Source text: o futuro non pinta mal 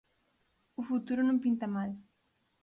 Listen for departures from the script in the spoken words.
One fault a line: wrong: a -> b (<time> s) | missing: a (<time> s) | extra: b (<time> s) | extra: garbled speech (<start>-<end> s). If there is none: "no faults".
no faults